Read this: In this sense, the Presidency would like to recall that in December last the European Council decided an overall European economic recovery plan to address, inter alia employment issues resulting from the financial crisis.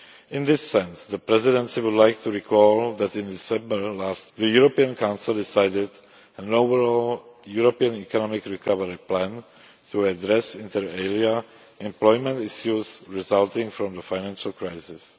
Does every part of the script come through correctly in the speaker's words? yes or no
yes